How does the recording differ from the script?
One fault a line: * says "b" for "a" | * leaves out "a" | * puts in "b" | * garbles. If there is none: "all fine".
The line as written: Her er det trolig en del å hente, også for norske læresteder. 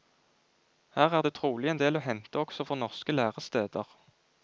all fine